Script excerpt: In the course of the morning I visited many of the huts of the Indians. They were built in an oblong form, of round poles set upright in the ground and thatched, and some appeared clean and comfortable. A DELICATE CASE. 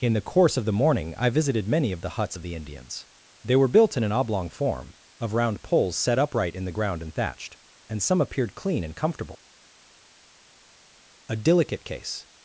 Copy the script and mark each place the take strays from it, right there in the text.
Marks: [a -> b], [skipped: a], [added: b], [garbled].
In the course of the morning I visited many of the huts of the Indians. They were built in an oblong form, of round poles set upright in the ground and thatched, and some appeared clean and comfortable. A DELICATE CASE.